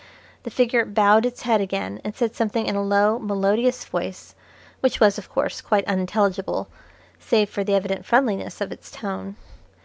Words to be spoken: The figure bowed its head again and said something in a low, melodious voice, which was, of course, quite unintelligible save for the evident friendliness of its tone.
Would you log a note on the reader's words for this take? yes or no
no